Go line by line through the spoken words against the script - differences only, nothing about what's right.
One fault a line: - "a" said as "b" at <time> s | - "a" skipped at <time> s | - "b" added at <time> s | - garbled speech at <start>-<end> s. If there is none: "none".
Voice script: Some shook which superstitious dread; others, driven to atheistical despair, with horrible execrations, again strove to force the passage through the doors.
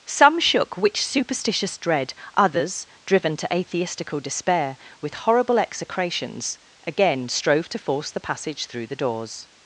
none